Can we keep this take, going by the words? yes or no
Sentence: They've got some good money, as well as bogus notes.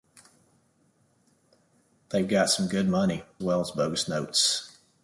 no